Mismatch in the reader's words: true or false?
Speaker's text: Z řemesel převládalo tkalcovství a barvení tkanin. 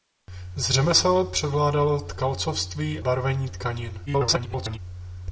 true